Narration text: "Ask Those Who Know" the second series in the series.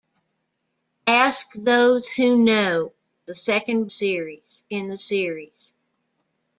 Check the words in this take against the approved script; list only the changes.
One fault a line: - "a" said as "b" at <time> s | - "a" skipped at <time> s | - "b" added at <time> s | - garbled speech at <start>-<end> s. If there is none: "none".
none